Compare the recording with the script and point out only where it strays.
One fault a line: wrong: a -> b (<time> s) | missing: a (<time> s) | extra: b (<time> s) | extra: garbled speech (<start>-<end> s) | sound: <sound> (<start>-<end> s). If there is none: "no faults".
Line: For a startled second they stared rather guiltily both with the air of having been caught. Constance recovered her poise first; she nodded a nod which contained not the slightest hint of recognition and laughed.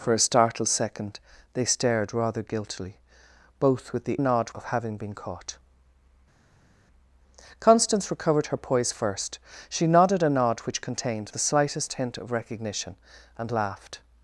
wrong: air -> nod (4.2 s)
missing: not (11.3 s)